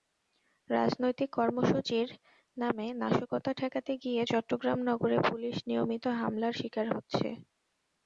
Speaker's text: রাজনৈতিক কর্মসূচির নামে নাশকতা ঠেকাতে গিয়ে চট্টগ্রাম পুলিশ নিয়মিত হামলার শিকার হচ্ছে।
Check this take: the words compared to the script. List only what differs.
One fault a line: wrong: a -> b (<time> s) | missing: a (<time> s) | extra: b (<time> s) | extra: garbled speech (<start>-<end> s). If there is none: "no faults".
extra: নগরে (4.9 s)